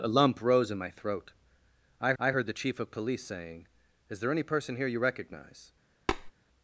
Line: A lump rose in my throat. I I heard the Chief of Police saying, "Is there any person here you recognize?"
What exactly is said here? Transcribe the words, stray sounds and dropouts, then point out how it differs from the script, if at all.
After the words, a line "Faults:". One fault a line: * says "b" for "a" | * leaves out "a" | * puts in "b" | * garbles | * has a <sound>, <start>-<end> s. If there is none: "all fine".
A lump rose in my throat. I I heard the Chief of Police saying, "Is there any person here you recognize?"
Faults:
* has a tap, 6.1-6.3 s